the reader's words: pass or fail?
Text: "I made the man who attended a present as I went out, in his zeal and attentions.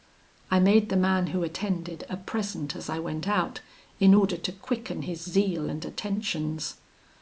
fail